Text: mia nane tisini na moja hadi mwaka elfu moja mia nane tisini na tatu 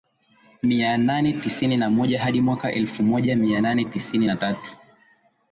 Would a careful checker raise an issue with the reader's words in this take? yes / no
no